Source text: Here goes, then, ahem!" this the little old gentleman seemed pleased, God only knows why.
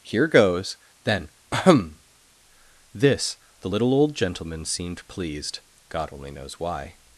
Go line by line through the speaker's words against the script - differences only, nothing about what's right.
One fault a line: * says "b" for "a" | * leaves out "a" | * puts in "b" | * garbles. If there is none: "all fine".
all fine